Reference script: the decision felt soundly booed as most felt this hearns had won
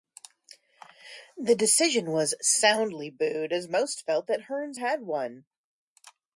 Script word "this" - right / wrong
wrong